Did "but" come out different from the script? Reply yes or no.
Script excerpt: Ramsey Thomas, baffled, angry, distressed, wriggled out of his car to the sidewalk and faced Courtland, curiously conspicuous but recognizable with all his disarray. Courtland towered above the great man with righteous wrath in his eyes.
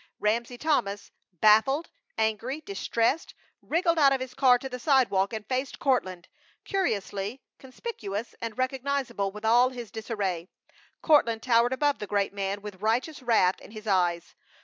yes